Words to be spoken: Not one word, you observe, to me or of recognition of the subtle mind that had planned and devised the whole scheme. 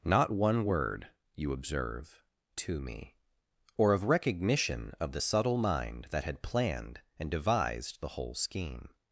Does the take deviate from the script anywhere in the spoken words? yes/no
no